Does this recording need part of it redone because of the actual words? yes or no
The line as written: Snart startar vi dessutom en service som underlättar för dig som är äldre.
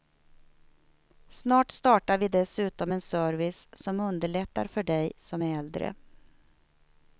no